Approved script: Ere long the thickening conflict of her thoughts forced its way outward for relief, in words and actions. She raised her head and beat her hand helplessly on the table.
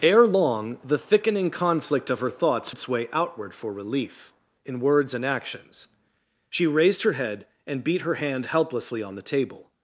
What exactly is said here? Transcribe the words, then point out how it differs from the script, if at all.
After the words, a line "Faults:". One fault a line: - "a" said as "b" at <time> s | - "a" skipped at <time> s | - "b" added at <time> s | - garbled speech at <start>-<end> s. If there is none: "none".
Ere long the thickening conflict of her thoughts its way outward for relief, in words and actions. She raised her head and beat her hand helplessly on the table.
Faults:
- "forced" skipped at 2.7 s